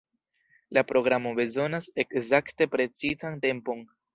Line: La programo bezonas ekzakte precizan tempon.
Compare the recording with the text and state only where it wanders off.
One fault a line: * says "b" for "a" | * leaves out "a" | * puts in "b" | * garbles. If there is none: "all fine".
all fine